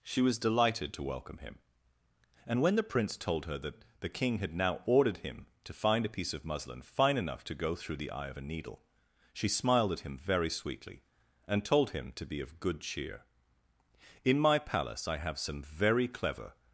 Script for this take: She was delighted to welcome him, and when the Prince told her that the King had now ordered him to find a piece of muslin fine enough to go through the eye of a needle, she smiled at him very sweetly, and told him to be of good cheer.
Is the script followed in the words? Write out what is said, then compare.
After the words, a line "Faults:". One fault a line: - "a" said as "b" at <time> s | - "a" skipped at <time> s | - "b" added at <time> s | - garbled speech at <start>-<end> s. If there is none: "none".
She was delighted to welcome him, and when the Prince told her that the King had now ordered him to find a piece of muslin fine enough to go through the eye of a needle, she smiled at him very sweetly, and told him to be of good cheer. "In my palace I have some very clever
Faults:
- "In my palace I have some very clever" added at 14.2 s